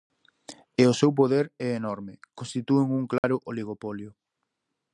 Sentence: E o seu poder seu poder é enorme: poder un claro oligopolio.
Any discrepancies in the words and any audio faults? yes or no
yes